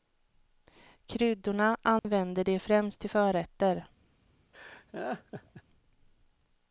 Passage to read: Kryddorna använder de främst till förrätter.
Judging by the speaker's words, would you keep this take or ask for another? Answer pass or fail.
pass